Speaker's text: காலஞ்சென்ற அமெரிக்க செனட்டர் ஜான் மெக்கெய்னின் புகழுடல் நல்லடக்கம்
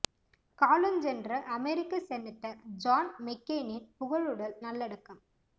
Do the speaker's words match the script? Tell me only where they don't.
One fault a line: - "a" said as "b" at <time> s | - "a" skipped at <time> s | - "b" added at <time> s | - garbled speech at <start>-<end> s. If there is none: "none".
none